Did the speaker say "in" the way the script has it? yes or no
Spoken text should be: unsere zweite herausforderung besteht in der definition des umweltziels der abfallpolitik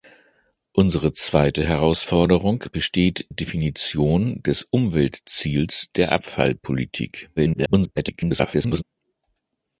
no